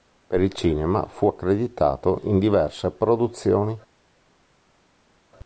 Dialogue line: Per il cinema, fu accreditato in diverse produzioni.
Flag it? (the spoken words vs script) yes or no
no